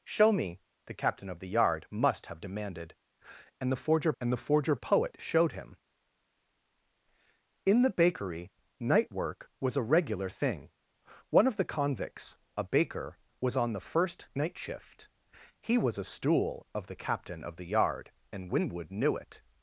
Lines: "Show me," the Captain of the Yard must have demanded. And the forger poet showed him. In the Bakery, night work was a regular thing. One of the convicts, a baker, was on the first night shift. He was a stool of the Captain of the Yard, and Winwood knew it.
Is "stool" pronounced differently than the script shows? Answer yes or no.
no